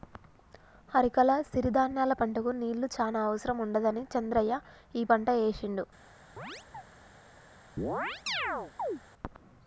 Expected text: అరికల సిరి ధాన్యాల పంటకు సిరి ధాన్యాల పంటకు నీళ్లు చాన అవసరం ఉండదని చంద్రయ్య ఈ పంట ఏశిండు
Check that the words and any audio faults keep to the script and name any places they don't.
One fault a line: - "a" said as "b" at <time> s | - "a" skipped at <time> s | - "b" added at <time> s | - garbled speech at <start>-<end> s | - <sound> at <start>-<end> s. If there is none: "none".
- "సిరి ధాన్యాల పంటకు" skipped at 2.5 s
- chirp at 6.4-6.8 s
- chirp at 7.8-9.0 s